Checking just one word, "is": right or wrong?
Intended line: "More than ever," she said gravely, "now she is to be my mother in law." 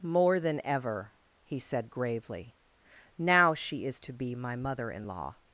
right